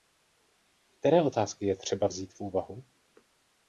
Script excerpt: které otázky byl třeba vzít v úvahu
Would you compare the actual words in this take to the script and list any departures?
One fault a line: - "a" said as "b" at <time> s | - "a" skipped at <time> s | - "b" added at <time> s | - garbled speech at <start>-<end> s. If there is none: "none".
- "byl" said as "je" at 1.6 s